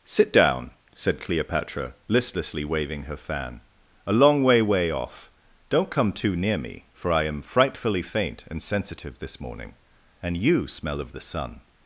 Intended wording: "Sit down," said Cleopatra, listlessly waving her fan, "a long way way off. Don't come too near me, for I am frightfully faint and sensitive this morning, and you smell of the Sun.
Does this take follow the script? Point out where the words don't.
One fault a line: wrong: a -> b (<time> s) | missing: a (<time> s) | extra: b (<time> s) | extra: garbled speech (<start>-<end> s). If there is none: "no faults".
no faults